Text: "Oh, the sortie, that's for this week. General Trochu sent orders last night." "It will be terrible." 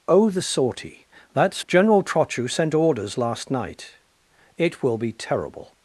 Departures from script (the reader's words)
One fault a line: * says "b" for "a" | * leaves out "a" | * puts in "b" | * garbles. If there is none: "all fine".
* leaves out "for this week"